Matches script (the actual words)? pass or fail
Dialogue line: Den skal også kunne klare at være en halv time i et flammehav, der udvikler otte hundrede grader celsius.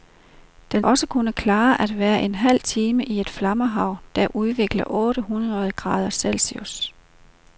fail